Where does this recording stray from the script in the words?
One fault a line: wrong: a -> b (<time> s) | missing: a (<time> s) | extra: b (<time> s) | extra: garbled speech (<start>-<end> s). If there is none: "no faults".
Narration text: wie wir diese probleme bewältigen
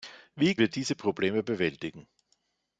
no faults